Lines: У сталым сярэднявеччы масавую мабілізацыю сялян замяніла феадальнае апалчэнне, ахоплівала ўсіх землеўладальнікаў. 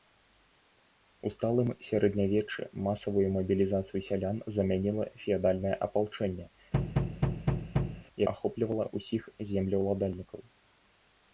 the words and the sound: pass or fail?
fail